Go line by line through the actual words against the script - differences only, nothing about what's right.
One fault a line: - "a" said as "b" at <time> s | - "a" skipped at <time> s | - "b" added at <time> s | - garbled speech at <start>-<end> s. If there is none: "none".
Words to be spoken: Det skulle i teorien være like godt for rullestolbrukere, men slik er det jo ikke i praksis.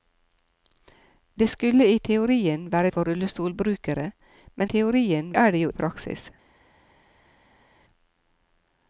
- "like godt" skipped at 2.9 s
- "slik" said as "teorien" at 4.6 s
- "ikke" skipped at 5.7 s